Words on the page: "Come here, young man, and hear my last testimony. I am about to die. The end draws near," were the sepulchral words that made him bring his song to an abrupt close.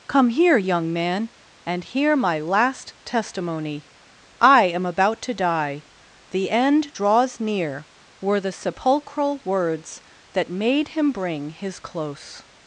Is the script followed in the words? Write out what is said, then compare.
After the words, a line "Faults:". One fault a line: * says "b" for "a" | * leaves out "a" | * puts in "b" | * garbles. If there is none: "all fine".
"Come here, young man, and hear my last testimony. I am about to die. The end draws near," were the sepulchral words that made him bring his close.
Faults:
* leaves out "song to an abrupt"